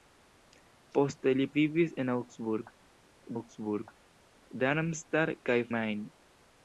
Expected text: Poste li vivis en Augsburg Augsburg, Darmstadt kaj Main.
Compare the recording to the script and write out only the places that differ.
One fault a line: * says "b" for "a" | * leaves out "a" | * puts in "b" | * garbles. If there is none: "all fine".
all fine